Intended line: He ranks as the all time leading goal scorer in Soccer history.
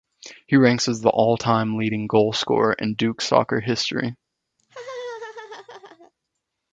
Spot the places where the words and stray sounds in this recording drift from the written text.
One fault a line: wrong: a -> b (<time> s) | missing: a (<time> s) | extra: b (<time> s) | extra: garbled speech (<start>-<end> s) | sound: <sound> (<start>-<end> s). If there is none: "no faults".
extra: Duke (2.9 s)
sound: laugh (4.6-6.1 s)